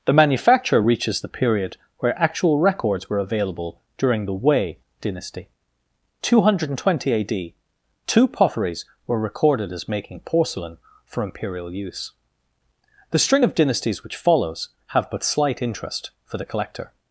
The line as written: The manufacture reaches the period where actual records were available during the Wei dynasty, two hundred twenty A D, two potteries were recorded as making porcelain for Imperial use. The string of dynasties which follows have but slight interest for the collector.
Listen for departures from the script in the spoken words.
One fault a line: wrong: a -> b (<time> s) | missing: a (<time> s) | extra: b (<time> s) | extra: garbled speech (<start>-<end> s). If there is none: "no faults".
no faults